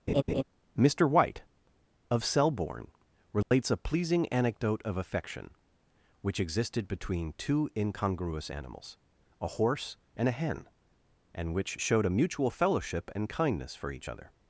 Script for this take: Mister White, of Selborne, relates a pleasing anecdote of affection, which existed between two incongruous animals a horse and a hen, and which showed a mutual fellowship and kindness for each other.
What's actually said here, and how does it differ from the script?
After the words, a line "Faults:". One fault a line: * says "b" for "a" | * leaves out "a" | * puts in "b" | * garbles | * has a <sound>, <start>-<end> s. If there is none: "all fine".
Mister White, of Selborne, relates a pleasing anecdote of affection, which existed between two incongruous animals a horse and a hen, and which showed a mutual fellowship and kindness for each other.
Faults:
* has a laugh, 0.1-0.4 s
* has a dropout, 3.4-3.5 s